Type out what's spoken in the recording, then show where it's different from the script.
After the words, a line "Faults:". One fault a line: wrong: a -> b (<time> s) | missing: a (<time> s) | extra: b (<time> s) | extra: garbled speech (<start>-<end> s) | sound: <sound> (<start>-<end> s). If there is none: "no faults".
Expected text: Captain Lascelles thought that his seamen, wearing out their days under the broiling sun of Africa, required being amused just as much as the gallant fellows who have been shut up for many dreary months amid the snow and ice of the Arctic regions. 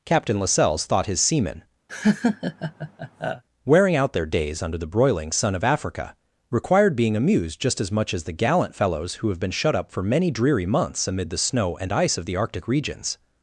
Captain Lascelles thought his seamen, wearing out their days under the broiling sun of Africa, required being amused just as much as the gallant fellows who have been shut up for many dreary months amid the snow and ice of the Arctic regions.
Faults:
missing: that (1.1 s)
sound: laugh (1.9-3.4 s)